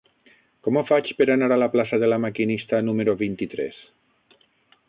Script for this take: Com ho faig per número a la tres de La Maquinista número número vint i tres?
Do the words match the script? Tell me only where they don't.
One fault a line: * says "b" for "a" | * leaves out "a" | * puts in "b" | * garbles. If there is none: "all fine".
* says "anar" for "número"
* says "plaça" for "tres"
* leaves out "número"